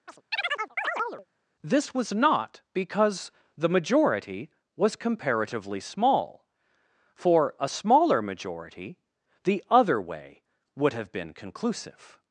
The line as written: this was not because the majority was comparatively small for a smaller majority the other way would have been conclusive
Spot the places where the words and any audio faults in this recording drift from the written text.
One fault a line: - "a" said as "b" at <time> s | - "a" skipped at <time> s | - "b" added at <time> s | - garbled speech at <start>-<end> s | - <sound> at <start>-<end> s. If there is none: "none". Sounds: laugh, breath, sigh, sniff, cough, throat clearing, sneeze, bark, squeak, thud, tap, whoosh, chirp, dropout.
- chirp at 0.1-1.3 s